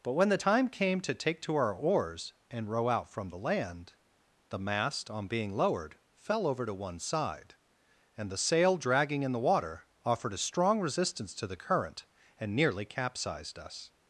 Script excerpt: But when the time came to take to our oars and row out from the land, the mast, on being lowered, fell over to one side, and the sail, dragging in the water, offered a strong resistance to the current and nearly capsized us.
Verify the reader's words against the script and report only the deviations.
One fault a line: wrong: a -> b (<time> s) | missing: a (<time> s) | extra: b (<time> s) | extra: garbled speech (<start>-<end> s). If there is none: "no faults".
no faults